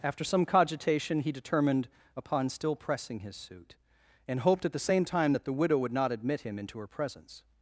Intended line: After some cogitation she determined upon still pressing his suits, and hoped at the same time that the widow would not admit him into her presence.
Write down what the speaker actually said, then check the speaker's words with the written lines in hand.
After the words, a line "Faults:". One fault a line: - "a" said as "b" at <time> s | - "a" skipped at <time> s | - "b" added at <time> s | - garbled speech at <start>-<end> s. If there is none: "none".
After some cogitation he determined upon still pressing his suit, and hoped at the same time that the widow would not admit him into her presence.
Faults:
- "she" said as "he" at 1.2 s
- "suits" said as "suit" at 3.3 s